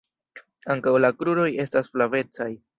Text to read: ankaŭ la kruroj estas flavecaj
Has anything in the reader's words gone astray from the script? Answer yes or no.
no